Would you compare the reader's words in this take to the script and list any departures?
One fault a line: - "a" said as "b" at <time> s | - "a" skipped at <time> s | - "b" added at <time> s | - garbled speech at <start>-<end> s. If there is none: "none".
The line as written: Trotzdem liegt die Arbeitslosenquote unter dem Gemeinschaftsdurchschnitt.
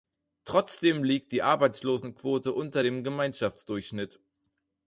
none